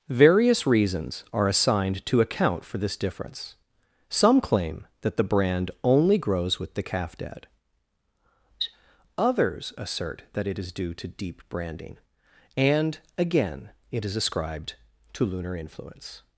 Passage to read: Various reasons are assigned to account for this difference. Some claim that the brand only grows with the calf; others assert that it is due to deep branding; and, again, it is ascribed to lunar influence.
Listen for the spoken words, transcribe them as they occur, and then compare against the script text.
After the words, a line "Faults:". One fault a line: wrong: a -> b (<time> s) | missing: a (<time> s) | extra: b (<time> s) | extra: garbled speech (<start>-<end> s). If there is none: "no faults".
Various reasons are assigned to account for this difference. Some claim that the brand only grows with the calf; dad others assert that it is due to deep branding; and, again, it is ascribed to lunar influence.
Faults:
extra: dad (7.2 s)